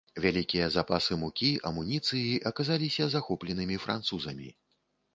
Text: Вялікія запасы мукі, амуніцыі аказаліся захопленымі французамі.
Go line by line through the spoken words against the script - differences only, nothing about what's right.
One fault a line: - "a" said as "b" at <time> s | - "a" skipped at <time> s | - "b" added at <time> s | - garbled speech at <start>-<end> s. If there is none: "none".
none